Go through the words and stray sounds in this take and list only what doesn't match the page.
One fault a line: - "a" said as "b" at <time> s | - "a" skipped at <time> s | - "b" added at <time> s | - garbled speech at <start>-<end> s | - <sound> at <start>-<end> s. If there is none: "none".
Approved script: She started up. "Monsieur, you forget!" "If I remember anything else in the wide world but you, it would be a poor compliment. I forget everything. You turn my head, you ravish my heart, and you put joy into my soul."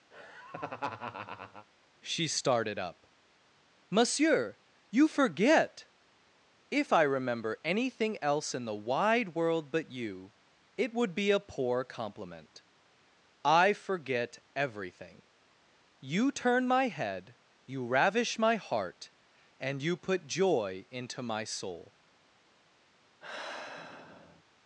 - laugh at 0.1-1.7 s
- sigh at 23.2-24.4 s